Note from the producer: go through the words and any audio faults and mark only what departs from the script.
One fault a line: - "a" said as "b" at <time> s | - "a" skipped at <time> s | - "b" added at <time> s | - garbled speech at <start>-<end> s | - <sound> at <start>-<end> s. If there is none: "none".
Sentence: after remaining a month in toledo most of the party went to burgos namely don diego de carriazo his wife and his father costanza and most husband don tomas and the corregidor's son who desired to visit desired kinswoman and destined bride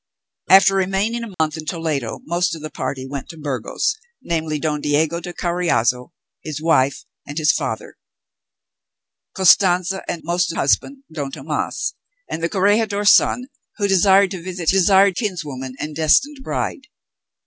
- dropout at 1.3-1.4 s